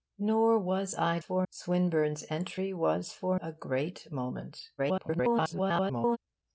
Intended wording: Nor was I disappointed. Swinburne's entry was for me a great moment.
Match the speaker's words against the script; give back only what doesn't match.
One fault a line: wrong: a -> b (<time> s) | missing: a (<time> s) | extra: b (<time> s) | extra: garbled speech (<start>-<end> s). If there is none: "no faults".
wrong: disappointed -> for (1.2 s)
missing: me (3.4 s)
extra: garbled speech (4.8-6.2 s)